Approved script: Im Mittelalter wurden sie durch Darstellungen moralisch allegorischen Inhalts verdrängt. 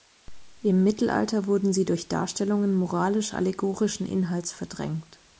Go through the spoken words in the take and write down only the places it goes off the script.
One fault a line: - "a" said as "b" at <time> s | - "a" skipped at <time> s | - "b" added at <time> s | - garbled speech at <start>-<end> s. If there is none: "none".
none